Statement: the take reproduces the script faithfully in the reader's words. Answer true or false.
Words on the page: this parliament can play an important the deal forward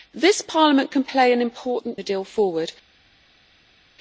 true